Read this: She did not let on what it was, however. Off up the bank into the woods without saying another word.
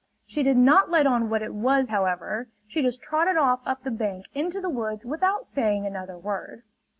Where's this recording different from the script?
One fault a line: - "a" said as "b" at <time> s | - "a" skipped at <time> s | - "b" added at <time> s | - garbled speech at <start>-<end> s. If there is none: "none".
- "She just trotted" added at 2.7 s